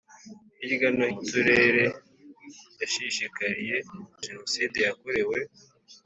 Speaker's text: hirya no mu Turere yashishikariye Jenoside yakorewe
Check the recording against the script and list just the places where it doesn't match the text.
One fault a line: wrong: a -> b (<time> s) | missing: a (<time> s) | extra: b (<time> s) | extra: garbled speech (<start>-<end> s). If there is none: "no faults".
no faults